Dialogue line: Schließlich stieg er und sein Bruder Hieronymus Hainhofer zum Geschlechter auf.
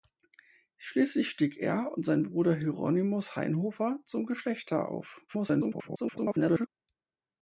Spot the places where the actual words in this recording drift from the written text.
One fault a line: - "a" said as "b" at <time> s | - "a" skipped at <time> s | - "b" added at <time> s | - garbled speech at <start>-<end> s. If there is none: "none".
- garbled speech at 5.3-6.7 s